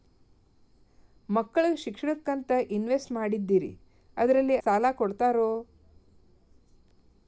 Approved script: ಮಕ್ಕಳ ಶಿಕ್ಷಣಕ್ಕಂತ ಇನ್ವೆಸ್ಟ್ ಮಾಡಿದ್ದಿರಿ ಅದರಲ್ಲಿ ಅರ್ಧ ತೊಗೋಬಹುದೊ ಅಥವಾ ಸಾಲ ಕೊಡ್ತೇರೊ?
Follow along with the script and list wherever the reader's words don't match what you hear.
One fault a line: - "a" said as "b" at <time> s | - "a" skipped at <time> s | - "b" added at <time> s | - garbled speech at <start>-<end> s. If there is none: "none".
- "ಅರ್ಧ ತೊಗೋಬಹುದೊ ಅಥವಾ" skipped at 4.6 s